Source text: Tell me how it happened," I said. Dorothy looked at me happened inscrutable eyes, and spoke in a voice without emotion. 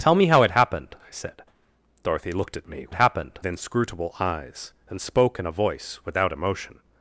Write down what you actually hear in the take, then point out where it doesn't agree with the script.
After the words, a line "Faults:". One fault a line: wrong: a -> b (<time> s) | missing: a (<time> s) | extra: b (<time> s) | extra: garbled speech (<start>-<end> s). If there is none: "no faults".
Tell me how it happened," I said. Dorothy looked at me happened inscrutable eyes, and spoke in a voice without emotion.
Faults:
no faults